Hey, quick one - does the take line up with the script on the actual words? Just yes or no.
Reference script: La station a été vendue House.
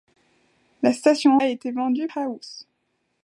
yes